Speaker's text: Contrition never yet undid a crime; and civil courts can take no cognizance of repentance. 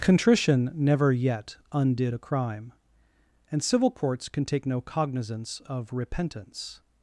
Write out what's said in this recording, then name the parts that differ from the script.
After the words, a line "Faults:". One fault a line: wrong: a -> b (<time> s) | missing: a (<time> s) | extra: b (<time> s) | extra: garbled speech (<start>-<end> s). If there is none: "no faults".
Contrition never yet undid a crime; and civil courts can take no cognizance of repentance.
Faults:
no faults